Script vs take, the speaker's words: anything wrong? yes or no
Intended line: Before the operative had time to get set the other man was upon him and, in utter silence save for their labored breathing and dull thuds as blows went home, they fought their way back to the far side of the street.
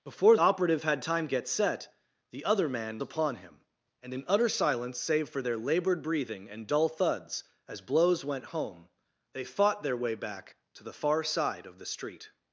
yes